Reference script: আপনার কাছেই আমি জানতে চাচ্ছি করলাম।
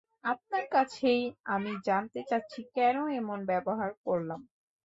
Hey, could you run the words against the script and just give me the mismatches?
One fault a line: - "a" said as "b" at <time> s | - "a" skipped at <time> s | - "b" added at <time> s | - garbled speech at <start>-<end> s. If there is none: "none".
- "কেন এমন ব্যবহার" added at 2.8 s